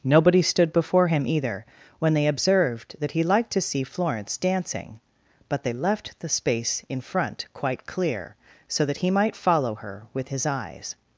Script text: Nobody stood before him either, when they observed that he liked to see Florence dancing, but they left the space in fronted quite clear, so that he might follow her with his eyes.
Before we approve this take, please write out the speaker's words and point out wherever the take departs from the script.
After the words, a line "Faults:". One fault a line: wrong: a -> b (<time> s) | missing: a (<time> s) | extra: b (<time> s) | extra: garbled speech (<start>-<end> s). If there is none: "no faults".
Nobody stood before him either, when they observed that he liked to see Florence dancing, but they left the space in front quite clear, so that he might follow her with his eyes.
Faults:
wrong: fronted -> front (7.0 s)